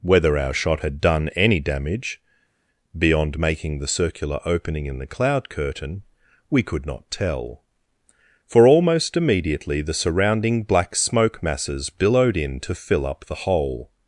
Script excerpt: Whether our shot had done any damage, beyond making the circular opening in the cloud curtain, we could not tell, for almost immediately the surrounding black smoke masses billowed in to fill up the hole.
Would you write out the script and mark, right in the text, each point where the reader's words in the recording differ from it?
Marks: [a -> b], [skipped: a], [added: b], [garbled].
Whether our shot had done any damage, beyond making the circular opening in the cloud curtain, we could not tell, for almost immediately the surrounding black smoke masses billowed in to fill up the hole.